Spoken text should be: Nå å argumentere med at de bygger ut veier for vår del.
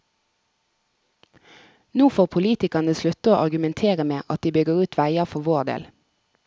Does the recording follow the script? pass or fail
fail